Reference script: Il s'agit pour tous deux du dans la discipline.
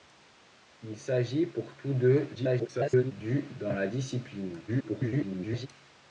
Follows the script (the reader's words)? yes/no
no